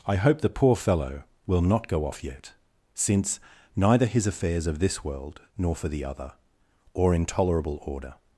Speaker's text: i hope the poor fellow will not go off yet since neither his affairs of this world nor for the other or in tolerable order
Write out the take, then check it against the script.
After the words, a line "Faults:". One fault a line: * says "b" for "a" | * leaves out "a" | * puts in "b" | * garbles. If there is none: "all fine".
i hope the poor fellow will not go off yet since neither his affairs of this world nor for the other or in tolerable order
Faults:
all fine